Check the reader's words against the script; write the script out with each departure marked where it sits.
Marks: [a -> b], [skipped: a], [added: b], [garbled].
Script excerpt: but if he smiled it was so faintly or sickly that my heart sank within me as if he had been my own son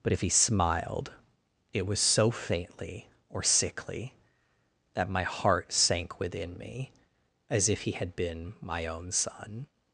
but if he smiled it was so faintly or sickly that my heart sank within me as if he had been my own son